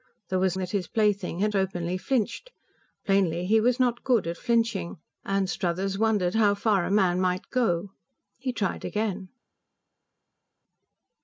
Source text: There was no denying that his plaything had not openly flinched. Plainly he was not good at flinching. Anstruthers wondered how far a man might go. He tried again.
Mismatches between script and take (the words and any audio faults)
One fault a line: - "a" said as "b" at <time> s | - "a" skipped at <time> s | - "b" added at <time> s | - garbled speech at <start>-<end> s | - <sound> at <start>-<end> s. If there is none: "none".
- "no denying" skipped at 0.6 s
- "not" skipped at 1.5 s